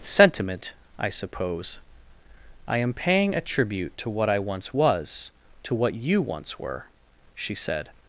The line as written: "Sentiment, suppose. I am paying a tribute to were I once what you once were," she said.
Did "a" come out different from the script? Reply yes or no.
no